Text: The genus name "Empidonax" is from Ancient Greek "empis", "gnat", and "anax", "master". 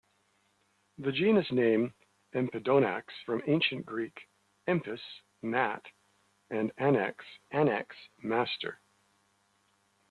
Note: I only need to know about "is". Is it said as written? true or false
false